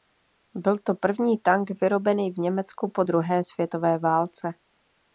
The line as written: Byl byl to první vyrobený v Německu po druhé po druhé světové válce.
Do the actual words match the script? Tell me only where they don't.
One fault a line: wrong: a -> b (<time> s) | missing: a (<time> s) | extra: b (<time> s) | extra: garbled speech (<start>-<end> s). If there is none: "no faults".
missing: byl (0.8 s)
extra: tank (1.4 s)
missing: po druhé (3.4 s)